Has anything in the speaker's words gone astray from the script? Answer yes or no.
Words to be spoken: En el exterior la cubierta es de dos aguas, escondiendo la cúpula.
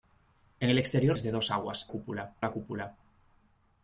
yes